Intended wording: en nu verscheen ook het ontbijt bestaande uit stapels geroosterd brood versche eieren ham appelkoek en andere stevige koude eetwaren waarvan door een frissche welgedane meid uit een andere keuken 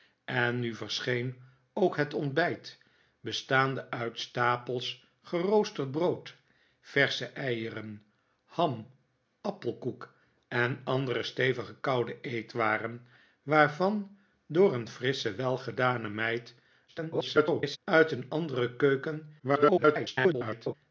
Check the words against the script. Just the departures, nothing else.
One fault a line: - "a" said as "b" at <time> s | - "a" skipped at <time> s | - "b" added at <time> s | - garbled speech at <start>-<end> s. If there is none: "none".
- garbled speech at 16.9-17.8 s
- garbled speech at 19.4-20.7 s